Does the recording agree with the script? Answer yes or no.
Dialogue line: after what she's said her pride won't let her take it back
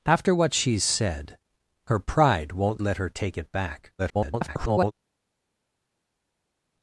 no